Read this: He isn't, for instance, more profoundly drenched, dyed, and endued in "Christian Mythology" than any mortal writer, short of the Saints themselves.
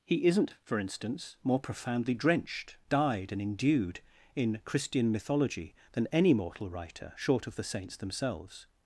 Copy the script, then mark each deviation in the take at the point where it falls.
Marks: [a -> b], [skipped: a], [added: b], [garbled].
He isn't, for instance, more profoundly drenched, dyed, and endued in "Christian Mythology" than any mortal writer, short of the Saints themselves.